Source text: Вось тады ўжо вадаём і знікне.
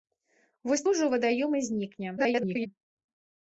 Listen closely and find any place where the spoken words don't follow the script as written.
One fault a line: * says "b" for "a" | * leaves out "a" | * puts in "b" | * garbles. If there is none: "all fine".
* leaves out "тады"
* garbles